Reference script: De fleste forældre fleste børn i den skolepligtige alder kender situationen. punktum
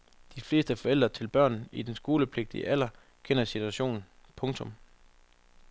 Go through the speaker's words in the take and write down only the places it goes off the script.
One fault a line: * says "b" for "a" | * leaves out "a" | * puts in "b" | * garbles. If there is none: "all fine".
* says "til" for "fleste"